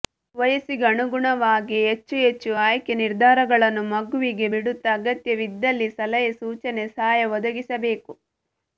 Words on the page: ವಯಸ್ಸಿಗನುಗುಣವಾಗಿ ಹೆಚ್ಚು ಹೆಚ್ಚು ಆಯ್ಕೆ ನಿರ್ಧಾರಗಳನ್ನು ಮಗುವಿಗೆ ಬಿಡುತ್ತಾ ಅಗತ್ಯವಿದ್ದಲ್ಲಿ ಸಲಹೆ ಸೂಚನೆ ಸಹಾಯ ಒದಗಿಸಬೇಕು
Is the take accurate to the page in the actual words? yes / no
yes